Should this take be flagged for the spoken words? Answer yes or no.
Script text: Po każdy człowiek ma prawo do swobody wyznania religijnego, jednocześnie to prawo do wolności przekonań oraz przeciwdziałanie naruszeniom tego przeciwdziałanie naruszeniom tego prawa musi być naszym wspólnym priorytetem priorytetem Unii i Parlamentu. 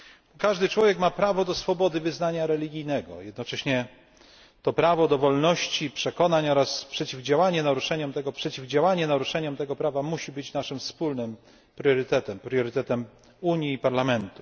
no